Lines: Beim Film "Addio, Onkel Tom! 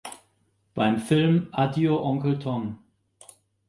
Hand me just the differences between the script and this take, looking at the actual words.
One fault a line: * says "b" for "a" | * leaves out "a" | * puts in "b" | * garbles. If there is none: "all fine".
all fine